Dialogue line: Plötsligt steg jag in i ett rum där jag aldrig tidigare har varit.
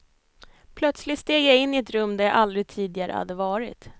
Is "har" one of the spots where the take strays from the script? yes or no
yes